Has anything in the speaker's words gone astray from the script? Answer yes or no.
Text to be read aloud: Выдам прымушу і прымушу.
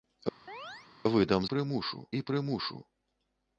no